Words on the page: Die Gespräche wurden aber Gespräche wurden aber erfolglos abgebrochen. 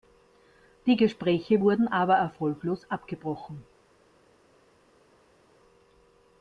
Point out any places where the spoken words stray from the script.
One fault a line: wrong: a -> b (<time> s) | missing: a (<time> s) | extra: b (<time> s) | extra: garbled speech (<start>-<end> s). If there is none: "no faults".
missing: Gespräche wurden aber (2.1 s)